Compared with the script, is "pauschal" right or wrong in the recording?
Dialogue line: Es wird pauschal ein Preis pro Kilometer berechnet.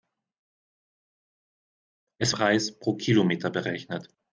wrong